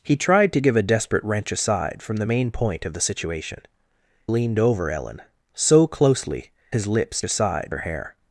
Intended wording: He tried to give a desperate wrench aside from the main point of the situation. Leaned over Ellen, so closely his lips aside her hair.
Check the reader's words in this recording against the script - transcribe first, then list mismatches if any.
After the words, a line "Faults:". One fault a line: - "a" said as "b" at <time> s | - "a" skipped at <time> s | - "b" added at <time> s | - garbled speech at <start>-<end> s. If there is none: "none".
He tried to give a desperate wrench aside from the main point of the situation. Leaned over Ellen, so closely his lips aside her hair.
Faults:
none